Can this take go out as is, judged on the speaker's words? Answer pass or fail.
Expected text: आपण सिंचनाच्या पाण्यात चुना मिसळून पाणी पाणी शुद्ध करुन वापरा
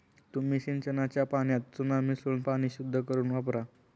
fail